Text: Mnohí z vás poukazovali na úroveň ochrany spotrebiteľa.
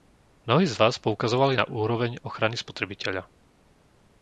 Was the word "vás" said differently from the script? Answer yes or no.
no